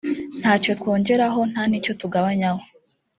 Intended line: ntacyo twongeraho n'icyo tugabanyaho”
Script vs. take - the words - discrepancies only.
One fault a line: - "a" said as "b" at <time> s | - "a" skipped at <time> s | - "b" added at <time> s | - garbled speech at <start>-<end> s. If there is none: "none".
- "nta" added at 1.5 s